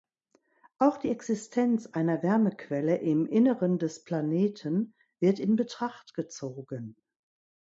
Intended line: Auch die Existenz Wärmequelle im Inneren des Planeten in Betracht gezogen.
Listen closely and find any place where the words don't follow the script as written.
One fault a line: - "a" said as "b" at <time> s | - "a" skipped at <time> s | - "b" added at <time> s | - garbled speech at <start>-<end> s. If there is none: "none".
- "einer" added at 1.9 s
- "wird" added at 5.2 s